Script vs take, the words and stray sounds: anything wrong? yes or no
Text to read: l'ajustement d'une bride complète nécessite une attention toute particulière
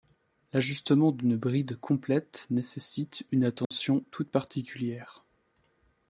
yes